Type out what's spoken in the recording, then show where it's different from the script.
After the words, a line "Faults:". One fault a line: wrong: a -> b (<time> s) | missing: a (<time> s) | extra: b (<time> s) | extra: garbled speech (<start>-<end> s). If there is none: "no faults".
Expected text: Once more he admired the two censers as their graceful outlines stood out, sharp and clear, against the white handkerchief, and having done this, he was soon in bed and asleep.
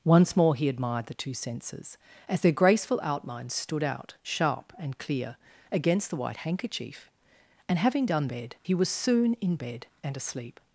Once more he admired the two censers as their graceful outlines stood out, sharp and clear, against the white handkerchief, and having done bed, he was soon in bed and asleep.
Faults:
wrong: this -> bed (8.3 s)